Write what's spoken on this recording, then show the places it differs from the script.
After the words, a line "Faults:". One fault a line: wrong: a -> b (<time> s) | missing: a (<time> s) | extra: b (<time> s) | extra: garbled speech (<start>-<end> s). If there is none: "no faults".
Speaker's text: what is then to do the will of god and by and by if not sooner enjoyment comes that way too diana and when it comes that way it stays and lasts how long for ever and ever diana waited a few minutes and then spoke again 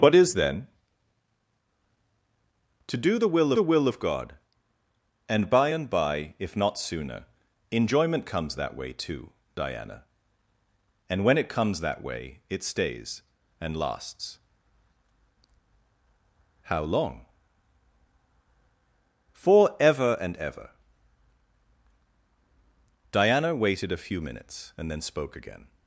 what is then to do the will the will of god and by and by if not sooner enjoyment comes that way too diana and when it comes that way it stays and lasts how long for ever and ever diana waited a few minutes and then spoke again
Faults:
extra: the will (3.5 s)